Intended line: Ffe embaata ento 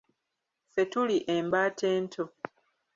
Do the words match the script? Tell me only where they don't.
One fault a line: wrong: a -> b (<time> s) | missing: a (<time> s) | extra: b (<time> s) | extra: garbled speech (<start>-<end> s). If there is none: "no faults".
extra: tuli (0.9 s)